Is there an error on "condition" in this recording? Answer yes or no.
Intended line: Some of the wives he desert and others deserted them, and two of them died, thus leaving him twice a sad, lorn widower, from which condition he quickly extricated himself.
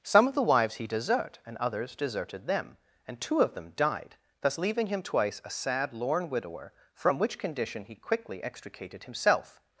no